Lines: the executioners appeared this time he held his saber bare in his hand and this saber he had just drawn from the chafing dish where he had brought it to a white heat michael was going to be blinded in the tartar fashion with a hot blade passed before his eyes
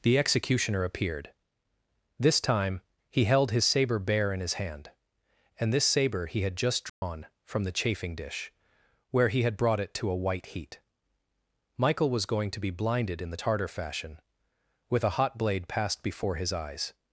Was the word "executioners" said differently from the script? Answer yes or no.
yes